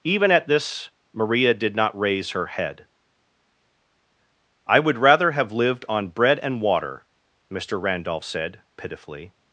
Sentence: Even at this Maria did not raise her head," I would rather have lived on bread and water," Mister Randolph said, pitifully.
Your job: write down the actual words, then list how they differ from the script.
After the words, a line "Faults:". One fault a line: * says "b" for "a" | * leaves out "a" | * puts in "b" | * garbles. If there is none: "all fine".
Even at this Maria did not raise her head," I would rather have lived on bread and water," Mister Randolph said, pitifully.
Faults:
all fine